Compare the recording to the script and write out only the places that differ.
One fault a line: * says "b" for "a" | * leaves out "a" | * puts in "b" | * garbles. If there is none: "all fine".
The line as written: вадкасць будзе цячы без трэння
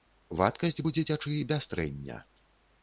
all fine